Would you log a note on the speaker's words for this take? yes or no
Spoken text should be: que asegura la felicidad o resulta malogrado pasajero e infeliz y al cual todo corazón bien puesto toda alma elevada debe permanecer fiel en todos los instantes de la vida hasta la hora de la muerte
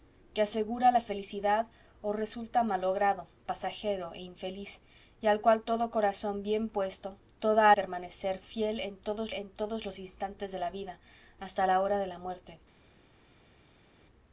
yes